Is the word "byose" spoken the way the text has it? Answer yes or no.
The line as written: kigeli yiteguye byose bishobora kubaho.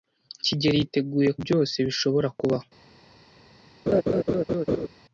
yes